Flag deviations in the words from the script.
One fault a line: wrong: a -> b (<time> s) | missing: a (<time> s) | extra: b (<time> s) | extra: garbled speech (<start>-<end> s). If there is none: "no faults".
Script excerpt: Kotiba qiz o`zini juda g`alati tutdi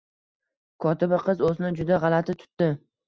no faults